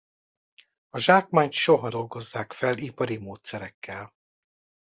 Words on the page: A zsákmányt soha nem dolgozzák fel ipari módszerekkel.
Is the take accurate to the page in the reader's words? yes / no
no